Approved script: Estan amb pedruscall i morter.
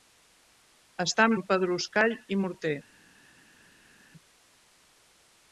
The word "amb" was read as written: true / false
true